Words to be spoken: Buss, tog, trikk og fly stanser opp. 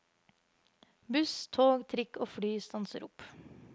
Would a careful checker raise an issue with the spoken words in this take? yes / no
no